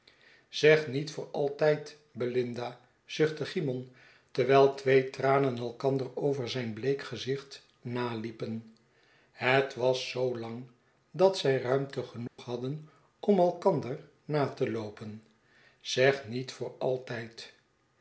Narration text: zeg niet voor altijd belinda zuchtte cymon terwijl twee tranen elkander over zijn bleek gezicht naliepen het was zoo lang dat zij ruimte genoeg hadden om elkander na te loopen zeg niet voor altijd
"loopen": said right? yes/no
yes